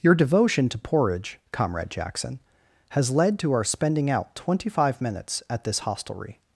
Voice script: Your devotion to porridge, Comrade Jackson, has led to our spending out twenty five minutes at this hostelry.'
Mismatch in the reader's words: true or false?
false